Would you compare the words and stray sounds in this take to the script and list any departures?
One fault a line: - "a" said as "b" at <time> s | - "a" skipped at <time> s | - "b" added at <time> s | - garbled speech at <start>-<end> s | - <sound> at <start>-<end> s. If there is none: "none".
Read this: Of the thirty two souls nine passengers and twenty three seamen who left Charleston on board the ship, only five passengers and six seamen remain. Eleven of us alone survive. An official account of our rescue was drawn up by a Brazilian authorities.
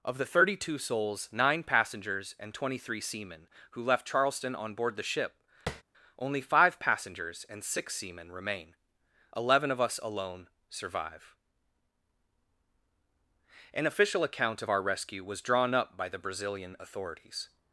- tap at 5.7-5.8 s
- "a" said as "the" at 16.1 s